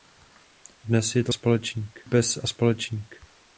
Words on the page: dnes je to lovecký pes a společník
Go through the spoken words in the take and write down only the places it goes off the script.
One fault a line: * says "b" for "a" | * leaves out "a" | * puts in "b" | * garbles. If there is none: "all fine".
* says "společník" for "lovecký"